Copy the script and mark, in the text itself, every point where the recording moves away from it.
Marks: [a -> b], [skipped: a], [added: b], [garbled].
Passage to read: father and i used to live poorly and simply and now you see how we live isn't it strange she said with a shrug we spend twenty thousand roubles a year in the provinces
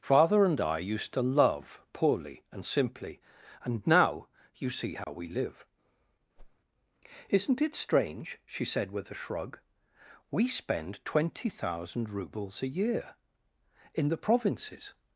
father and i used to [live -> love] poorly and simply and now you see how we live isn't it strange she said with a shrug we spend twenty thousand roubles a year in the provinces